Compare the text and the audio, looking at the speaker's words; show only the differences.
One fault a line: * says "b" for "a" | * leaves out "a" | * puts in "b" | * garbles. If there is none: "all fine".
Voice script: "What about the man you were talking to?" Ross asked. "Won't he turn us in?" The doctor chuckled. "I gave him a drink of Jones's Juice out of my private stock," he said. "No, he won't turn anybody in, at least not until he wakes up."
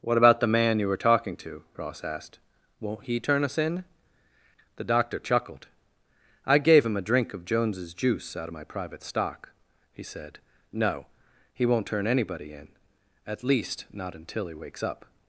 all fine